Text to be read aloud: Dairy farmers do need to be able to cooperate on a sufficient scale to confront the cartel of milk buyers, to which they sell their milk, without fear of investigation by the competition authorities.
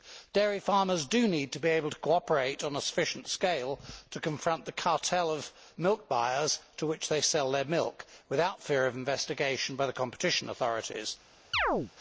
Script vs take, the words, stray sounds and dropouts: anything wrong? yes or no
yes